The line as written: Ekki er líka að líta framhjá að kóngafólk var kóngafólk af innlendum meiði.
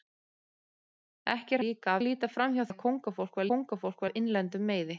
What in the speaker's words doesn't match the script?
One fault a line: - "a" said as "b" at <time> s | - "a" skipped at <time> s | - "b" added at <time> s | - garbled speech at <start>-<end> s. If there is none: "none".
none